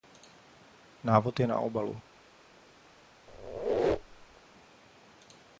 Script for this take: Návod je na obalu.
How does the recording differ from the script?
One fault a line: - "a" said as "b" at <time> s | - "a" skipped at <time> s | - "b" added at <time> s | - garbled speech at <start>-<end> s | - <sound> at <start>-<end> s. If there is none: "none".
- squeak at 3.3-4.4 s